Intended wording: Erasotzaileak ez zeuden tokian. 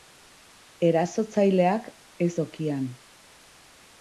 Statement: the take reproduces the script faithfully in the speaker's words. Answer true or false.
false